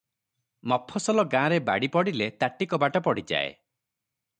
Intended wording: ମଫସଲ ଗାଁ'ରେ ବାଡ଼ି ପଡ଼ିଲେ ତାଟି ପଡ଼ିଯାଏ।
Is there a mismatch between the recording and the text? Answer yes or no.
yes